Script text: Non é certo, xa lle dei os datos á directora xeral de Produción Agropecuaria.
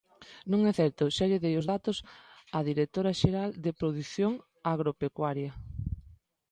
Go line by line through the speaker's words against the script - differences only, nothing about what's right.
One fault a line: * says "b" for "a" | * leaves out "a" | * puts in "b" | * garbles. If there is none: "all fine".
all fine